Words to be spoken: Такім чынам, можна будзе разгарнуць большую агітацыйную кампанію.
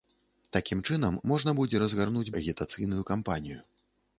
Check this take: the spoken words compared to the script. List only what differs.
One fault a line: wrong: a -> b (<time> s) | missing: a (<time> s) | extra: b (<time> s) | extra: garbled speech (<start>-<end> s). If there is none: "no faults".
missing: большую (2.3 s)